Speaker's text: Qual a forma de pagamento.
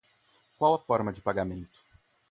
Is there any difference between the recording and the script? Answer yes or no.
no